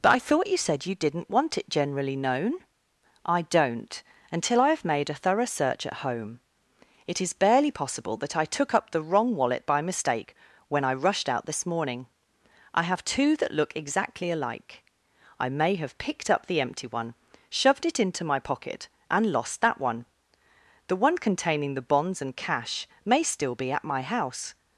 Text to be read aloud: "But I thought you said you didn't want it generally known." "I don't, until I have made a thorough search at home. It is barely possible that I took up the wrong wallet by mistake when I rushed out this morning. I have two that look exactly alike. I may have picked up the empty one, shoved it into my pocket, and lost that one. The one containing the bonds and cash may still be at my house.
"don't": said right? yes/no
yes